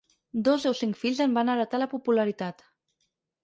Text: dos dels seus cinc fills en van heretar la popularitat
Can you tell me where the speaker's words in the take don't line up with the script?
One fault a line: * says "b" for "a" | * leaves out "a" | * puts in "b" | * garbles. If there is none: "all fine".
* leaves out "dels"